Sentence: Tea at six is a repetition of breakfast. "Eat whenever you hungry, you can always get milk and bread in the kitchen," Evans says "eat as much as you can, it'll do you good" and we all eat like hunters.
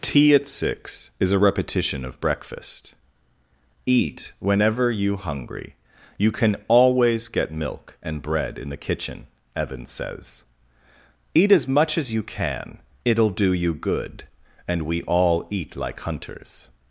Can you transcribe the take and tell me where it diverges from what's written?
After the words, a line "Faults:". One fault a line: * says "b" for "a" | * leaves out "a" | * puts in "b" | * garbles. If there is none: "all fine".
Tea at six is a repetition of breakfast. "Eat whenever you hungry, you can always get milk and bread in the kitchen," Evans says "eat as much as you can, it'll do you good" and we all eat like hunters.
Faults:
all fine